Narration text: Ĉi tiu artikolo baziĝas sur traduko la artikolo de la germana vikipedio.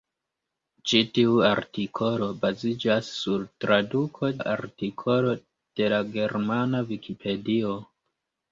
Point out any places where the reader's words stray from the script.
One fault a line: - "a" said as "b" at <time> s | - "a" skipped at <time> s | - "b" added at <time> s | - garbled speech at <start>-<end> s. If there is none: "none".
none